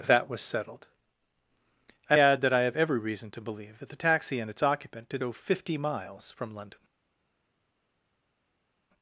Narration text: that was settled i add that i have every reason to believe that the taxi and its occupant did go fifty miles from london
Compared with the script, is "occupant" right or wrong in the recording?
right